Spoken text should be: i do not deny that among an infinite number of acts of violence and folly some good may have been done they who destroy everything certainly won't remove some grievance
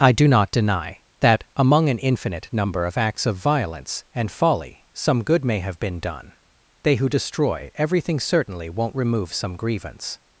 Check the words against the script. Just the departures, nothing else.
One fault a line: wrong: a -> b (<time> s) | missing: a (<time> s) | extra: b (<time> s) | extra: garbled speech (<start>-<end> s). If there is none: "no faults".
no faults